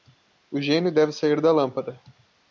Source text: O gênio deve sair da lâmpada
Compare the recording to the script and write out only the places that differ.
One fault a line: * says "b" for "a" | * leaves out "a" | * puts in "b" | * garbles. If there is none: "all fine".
all fine